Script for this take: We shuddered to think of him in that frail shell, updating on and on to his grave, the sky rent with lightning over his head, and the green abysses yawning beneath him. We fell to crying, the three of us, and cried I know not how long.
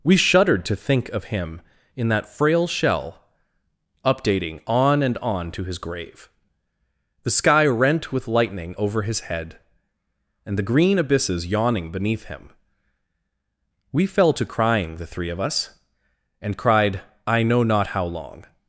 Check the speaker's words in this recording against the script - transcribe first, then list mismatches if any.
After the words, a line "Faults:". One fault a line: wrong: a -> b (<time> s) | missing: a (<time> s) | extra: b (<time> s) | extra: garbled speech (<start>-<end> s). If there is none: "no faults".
We shuddered to think of him in that frail shell, updating on and on to his grave, the sky rent with lightning over his head, and the green abysses yawning beneath him. We fell to crying, the three of us, and cried I know not how long.
Faults:
no faults